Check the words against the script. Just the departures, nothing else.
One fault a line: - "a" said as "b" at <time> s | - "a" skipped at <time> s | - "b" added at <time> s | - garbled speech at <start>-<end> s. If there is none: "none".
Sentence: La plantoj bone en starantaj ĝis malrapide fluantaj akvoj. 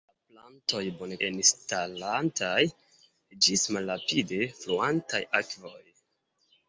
none